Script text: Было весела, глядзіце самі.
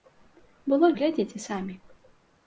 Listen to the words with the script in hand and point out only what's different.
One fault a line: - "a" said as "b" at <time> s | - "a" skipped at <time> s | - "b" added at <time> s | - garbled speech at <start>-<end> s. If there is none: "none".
- "весела" skipped at 0.9 s